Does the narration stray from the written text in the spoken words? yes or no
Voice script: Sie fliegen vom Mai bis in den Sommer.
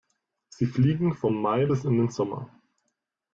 no